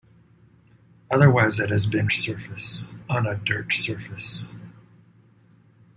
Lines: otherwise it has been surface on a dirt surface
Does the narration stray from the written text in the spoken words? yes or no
no